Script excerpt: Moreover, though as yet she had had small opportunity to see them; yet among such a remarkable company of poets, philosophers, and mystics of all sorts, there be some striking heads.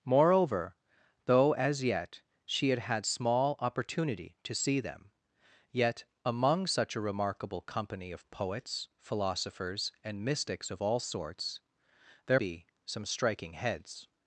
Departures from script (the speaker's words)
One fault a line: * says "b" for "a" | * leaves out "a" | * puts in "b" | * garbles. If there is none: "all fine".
all fine